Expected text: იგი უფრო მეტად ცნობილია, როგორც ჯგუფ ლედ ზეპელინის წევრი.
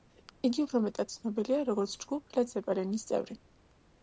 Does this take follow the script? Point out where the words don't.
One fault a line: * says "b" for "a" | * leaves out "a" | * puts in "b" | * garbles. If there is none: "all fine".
all fine